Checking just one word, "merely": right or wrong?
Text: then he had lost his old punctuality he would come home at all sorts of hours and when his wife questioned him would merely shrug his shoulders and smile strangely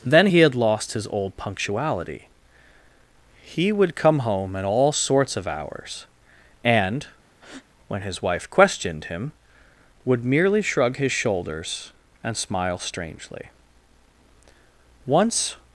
right